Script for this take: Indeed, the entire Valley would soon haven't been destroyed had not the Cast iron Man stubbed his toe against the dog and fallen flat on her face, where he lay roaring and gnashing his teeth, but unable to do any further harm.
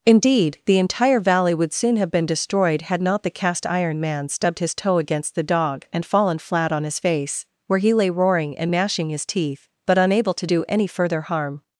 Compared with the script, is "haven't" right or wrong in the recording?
wrong